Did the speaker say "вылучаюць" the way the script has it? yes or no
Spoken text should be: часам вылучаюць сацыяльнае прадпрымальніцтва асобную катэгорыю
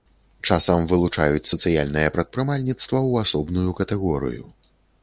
yes